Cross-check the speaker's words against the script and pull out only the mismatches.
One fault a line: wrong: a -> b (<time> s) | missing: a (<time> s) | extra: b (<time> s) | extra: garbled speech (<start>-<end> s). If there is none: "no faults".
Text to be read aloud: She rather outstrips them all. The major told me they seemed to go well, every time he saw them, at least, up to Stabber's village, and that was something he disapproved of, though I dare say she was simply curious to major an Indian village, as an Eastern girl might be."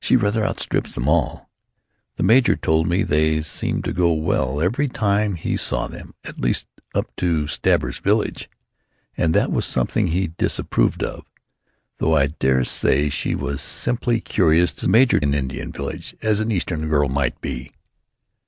no faults